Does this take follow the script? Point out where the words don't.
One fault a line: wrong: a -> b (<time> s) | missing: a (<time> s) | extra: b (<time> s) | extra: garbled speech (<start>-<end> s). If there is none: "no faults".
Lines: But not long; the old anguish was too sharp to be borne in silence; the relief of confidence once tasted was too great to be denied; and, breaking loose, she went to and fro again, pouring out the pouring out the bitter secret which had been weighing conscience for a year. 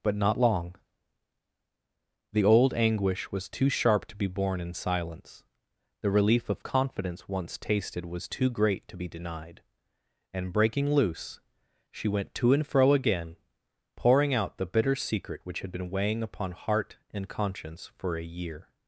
missing: pouring out the (14.7 s)
extra: upon heart and (16.2 s)